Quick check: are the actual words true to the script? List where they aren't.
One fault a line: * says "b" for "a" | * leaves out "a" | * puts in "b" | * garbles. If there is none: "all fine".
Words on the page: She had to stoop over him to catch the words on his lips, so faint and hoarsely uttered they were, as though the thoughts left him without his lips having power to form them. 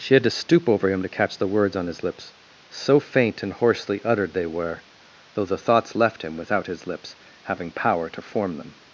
* leaves out "as"